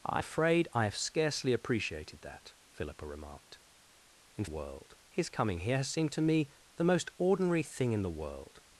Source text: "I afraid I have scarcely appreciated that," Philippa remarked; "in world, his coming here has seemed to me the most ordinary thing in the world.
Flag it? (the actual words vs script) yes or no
no